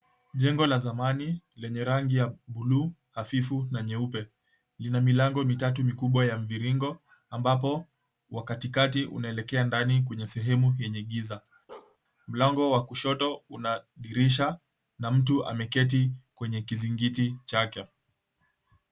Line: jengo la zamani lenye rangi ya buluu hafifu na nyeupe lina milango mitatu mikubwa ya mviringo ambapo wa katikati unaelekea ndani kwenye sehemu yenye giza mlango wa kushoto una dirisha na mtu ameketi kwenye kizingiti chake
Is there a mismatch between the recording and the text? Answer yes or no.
no